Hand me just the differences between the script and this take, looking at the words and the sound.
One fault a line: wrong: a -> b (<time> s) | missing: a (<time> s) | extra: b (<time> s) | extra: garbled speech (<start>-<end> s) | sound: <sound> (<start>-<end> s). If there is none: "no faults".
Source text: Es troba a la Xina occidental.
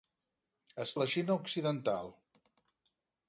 missing: troba (0.9 s)